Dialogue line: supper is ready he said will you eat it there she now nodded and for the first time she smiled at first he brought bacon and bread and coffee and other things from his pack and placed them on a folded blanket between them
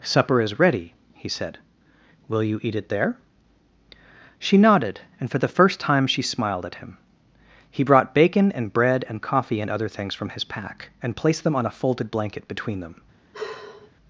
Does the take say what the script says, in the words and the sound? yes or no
no